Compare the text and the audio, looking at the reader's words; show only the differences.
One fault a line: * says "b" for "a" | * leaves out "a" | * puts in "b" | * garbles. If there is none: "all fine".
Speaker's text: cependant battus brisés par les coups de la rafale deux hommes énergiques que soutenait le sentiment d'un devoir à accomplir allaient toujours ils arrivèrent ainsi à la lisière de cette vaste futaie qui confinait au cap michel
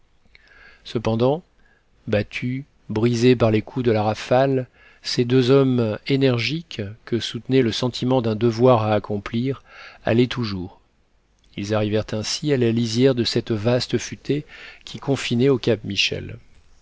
* puts in "ces"